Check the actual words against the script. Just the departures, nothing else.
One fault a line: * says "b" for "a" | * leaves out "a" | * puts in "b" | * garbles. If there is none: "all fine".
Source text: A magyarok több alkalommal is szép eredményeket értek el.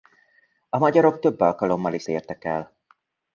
* leaves out "szép eredményeket"